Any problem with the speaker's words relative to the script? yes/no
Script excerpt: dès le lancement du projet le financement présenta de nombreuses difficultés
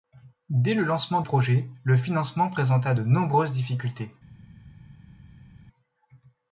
yes